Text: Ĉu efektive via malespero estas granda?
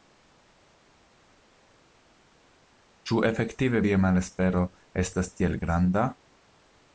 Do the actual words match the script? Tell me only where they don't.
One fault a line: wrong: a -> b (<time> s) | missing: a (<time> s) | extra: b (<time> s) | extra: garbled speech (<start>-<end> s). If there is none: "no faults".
extra: tiel (5.4 s)